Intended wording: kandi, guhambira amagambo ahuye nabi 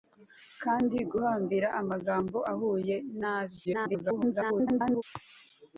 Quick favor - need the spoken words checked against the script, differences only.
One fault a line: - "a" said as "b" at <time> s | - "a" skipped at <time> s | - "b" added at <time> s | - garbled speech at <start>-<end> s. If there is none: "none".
- garbled speech at 3.6-5.0 s